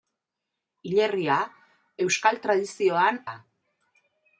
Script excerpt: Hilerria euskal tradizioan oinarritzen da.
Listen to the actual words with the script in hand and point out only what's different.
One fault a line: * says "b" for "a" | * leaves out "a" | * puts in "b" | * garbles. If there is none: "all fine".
* leaves out "oinarritzen"